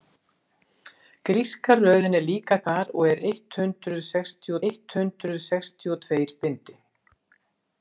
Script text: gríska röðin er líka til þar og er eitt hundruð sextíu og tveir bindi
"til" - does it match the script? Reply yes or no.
no